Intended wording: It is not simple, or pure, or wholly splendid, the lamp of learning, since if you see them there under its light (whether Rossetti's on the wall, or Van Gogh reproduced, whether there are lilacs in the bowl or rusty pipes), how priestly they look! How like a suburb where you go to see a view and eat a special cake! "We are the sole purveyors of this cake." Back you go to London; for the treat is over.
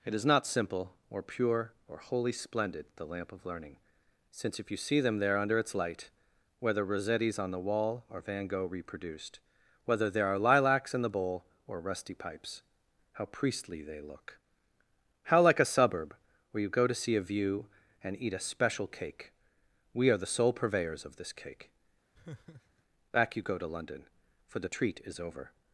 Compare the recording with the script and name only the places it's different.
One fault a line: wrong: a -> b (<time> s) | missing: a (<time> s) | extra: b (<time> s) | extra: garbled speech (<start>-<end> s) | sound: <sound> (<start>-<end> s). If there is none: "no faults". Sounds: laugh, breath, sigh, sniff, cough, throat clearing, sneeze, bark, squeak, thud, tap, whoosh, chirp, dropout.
sound: laugh (22.1-22.8 s)